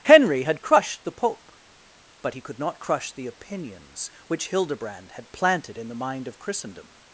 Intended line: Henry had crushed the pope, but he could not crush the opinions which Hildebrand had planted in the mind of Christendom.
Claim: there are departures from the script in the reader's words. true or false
false